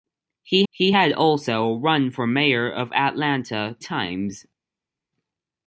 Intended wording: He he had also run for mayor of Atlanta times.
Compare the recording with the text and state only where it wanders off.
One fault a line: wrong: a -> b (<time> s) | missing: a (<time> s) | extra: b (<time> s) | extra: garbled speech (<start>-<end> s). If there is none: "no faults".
no faults